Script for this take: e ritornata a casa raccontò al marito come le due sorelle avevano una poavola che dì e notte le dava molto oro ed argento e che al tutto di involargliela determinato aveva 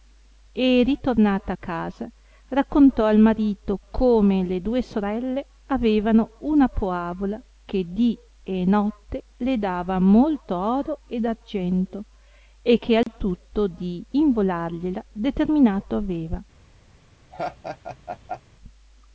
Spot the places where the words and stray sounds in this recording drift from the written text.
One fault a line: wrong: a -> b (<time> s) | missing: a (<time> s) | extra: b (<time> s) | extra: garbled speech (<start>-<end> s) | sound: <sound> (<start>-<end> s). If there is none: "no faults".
sound: dropout (13.0-13.1 s)
sound: laugh (17.3-18.4 s)